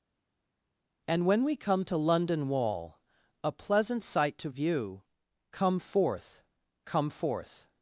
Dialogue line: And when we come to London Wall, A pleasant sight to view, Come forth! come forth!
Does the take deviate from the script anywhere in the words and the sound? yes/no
no